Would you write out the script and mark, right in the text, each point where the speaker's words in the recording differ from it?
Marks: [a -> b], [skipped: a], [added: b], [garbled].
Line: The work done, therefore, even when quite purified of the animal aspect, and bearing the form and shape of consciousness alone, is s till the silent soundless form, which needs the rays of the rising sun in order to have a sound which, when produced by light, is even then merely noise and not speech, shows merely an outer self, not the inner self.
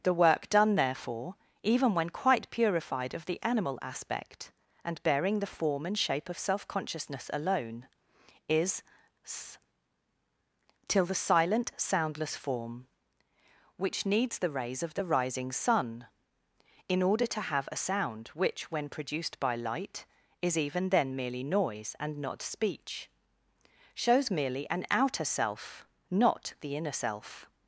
The work done, therefore, even when quite purified of the animal aspect, and bearing the form and shape of [added: self] consciousness alone, is s till the silent soundless form, which needs the rays of the rising sun in order to have a sound which, when produced by light, is even then merely noise and not speech, shows merely an outer self, not the inner self.